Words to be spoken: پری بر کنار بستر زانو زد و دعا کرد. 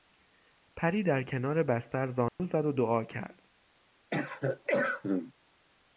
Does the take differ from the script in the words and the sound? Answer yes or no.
yes